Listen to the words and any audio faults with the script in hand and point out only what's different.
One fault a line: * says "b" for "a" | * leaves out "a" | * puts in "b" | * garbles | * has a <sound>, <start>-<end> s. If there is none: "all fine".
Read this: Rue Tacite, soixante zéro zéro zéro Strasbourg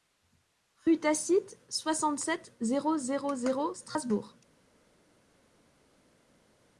* puts in "sept"